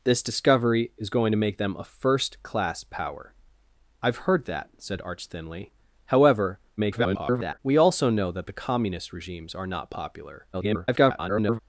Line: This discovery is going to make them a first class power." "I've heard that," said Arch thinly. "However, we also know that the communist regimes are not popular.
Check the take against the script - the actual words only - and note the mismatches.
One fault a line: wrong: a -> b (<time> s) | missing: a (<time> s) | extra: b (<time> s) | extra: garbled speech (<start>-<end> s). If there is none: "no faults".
extra: garbled speech (6.8-7.6 s)
extra: garbled speech (10.5-11.6 s)